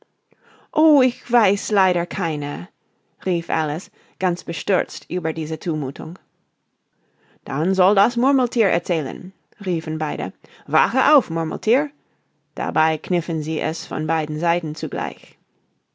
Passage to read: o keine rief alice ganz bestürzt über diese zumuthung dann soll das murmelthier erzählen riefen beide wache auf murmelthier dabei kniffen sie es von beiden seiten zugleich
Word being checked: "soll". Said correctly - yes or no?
yes